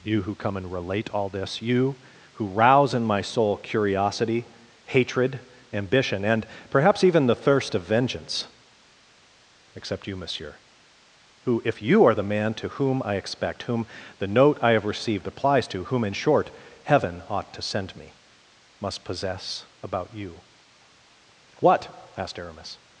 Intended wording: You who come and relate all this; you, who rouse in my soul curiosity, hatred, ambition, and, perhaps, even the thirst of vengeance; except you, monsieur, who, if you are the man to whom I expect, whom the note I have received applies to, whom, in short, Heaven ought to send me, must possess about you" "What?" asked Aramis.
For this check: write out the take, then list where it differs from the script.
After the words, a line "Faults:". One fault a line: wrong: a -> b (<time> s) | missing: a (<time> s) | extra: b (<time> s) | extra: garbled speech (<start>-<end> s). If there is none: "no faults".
You who come and relate all this; you, who rouse in my soul curiosity, hatred, ambition, and, perhaps, even the thirst of vengeance; except you, monsieur, who, if you are the man to whom I expect, whom the note I have received applies to, whom, in short, Heaven ought to send me, must possess about you" "What?" asked Aramis.
Faults:
no faults